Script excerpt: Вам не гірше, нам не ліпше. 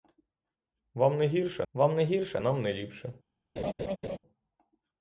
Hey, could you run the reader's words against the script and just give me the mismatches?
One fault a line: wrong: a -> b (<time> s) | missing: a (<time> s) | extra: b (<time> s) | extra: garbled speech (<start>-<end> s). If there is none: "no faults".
extra: вам не гірше (1.7 s)